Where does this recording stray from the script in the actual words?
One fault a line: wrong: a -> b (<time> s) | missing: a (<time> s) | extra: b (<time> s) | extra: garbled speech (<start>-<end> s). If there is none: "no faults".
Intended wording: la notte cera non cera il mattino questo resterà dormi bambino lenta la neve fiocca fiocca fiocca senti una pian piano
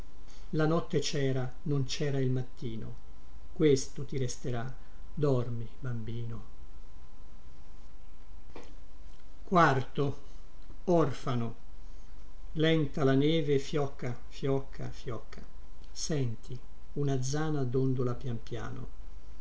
extra: ti (4.0 s)
extra: zana dondola (17.2 s)